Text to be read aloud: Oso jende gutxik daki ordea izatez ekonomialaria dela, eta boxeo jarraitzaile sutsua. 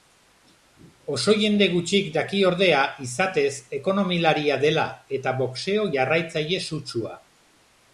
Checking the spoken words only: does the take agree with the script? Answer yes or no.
yes